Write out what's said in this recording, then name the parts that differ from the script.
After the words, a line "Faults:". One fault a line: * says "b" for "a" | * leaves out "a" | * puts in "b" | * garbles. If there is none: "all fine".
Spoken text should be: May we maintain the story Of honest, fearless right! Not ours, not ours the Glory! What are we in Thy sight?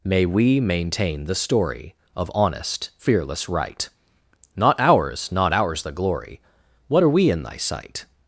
May we maintain the story Of honest, fearless right! Not ours, not ours the Glory! What are we in Thy sight?
Faults:
all fine